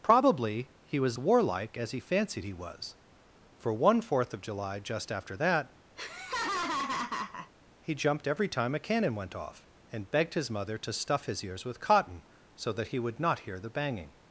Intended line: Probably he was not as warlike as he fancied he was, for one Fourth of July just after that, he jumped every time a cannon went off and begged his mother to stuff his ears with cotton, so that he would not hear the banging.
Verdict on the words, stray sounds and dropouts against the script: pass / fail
fail